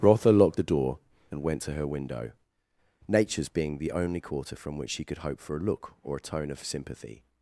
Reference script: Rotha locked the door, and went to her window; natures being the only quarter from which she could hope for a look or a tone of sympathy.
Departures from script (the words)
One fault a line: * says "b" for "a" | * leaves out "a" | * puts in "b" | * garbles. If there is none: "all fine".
all fine